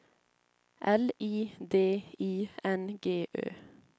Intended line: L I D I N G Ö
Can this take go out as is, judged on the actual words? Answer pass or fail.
pass